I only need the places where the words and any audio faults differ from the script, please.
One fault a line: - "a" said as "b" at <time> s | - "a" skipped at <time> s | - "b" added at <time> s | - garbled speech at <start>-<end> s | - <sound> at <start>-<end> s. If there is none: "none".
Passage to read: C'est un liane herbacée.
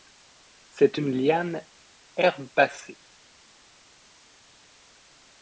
- "un" said as "une" at 0.9 s